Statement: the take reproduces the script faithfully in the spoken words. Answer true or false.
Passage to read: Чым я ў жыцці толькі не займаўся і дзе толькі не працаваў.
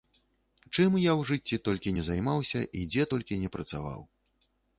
true